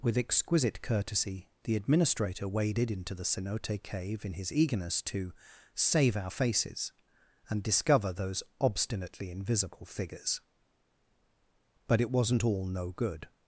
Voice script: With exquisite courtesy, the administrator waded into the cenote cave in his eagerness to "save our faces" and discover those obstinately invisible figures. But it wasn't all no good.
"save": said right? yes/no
yes